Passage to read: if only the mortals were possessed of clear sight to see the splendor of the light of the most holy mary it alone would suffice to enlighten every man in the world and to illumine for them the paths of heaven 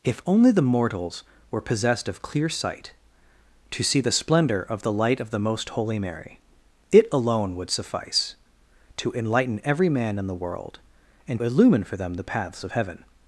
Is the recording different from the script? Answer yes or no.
yes